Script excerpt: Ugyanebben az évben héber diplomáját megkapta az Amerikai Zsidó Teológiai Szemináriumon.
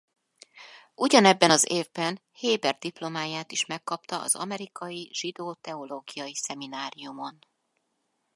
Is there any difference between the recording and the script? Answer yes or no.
yes